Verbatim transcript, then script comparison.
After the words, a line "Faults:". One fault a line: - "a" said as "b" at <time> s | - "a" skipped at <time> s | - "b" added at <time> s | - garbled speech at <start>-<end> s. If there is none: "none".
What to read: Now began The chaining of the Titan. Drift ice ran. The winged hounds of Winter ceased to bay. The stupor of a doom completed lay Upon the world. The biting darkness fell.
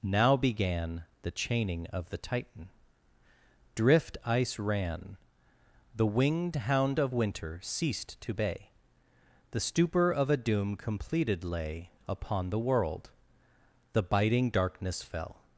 Now began The chaining of the Titan. Drift ice ran. The winged hound of Winter ceased to bay. The stupor of a doom completed lay Upon the world. The biting darkness fell.
Faults:
- "hounds" said as "hound" at 6.5 s